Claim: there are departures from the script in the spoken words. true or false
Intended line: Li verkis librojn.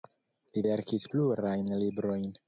true